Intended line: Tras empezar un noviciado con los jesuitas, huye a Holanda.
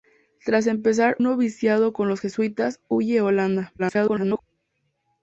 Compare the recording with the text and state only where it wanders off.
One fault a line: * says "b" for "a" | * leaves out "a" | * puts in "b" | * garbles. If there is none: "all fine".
* leaves out "un"
* garbles